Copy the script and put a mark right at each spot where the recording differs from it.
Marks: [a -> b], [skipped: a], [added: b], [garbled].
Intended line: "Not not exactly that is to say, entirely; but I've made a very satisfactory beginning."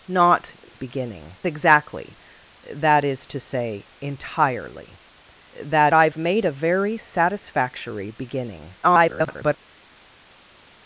"Not [not -> beginning] exactly that is to say, entirely; [but -> that] I've made a very satisfactory beginning." [garbled]